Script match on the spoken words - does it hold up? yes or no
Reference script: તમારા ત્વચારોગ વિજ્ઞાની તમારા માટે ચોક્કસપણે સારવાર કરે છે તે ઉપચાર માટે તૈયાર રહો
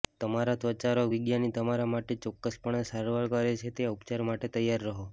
yes